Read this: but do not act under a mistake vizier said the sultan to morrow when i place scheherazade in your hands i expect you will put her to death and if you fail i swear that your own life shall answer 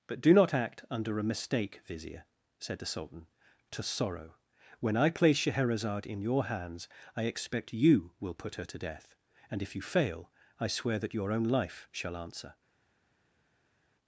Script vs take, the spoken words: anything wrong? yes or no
yes